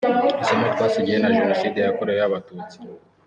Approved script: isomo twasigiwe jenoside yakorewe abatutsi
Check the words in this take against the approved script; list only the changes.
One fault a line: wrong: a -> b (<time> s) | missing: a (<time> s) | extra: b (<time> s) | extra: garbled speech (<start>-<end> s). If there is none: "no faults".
extra: na (1.2 s)